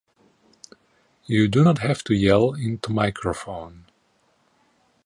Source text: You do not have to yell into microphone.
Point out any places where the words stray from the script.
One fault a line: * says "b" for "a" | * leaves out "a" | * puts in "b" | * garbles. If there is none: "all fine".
all fine